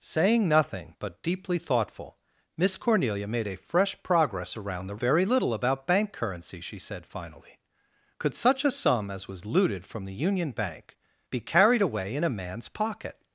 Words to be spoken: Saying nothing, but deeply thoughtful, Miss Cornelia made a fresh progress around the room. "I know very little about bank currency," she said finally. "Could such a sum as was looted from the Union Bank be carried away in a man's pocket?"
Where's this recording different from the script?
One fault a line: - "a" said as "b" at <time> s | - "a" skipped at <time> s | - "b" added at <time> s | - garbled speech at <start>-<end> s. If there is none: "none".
- "room I know" skipped at 5.0 s